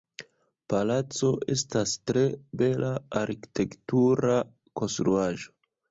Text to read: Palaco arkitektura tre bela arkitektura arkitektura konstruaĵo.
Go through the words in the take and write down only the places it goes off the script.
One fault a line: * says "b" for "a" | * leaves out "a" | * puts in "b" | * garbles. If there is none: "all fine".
* says "estas" for "arkitektura"
* leaves out "arkitektura"